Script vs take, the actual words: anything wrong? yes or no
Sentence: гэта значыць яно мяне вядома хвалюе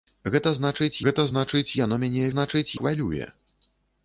yes